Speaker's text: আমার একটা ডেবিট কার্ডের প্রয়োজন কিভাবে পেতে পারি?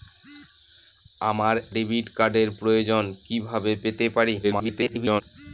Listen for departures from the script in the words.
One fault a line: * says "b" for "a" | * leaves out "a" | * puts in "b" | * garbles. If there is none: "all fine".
* leaves out "একটা"
* garbles